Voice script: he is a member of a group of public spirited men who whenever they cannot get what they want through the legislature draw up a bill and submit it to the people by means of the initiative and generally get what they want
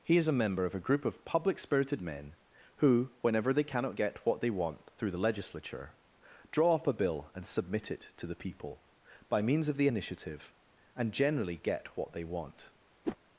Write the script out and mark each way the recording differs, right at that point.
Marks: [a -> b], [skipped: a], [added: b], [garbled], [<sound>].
he is a member of a group of public spirited men who whenever they cannot get what they want through the legislature draw up a bill and submit it to the people by means of the initiative and generally get what they want [whoosh]